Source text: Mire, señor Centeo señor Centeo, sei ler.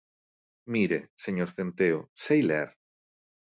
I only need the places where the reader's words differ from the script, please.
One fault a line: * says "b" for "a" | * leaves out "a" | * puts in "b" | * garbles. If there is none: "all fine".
* leaves out "señor Centeo"